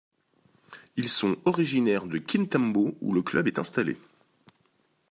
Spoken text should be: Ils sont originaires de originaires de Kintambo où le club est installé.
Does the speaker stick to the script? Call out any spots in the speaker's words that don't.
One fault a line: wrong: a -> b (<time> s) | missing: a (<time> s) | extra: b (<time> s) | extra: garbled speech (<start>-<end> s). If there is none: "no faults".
missing: originaires de (2.2 s)